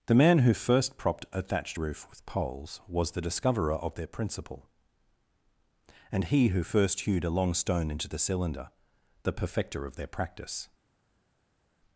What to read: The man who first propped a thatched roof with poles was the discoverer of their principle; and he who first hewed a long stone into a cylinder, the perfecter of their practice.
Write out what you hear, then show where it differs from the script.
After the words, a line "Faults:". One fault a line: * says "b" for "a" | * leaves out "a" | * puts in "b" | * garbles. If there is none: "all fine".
The man who first propped a thatched roof with poles was the discoverer of their principle; and he who first hewed a long stone into the cylinder, the perfecter of their practice.
Faults:
* says "the" for "a"